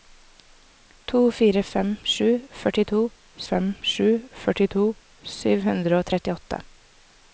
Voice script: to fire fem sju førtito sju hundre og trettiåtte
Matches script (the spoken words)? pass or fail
fail